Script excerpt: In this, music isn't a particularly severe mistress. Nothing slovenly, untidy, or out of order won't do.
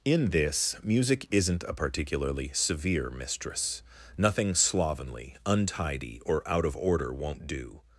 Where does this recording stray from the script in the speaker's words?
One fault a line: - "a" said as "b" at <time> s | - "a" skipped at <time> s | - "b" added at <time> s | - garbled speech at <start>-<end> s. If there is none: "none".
none